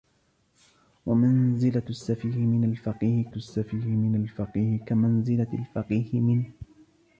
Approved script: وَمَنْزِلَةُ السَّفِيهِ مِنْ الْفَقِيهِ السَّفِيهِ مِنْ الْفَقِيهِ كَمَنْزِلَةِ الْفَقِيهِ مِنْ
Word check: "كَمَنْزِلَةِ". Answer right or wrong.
right